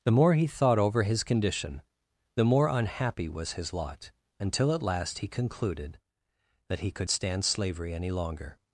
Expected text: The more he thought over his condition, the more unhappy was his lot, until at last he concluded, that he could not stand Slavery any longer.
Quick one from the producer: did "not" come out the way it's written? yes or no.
no